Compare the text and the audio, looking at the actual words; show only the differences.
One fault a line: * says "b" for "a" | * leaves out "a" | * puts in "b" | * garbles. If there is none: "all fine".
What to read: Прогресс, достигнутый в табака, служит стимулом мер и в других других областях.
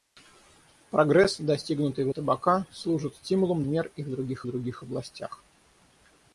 all fine